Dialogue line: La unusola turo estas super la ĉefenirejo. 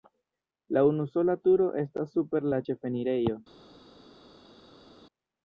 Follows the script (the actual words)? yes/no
yes